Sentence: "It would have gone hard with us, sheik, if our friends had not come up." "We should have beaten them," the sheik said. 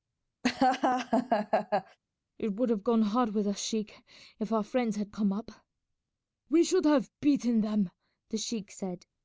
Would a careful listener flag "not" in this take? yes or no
yes